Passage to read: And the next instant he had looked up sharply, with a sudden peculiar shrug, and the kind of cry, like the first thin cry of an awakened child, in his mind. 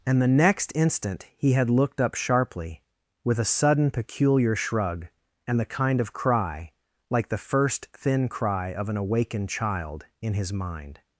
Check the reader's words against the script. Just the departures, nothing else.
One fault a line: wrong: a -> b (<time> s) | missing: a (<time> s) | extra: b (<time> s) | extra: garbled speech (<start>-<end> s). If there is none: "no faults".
no faults